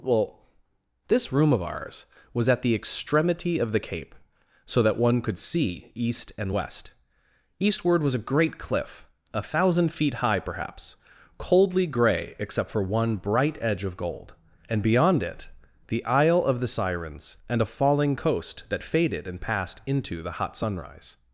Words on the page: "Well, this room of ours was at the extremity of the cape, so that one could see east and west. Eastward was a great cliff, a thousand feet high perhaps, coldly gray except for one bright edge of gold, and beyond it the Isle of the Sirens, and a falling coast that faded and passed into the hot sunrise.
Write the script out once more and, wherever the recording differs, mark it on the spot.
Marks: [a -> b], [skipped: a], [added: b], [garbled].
"Well, this room of ours was at the extremity of the cape, so that one could see east and west. Eastward was a great cliff, a thousand feet high perhaps, coldly gray except for one bright edge of gold, and beyond it the Isle of the Sirens, and a falling coast that faded and passed into the hot sunrise.